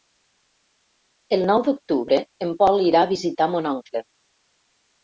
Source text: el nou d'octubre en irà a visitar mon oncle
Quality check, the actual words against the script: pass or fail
fail